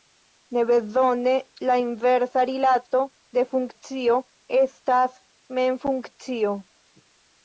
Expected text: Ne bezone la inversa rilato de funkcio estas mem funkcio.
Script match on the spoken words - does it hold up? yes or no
yes